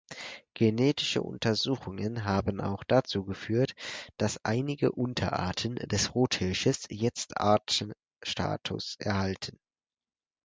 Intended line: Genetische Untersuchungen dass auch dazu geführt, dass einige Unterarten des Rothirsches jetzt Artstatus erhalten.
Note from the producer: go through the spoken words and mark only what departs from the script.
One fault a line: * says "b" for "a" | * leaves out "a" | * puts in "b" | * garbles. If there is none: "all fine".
* says "haben" for "dass"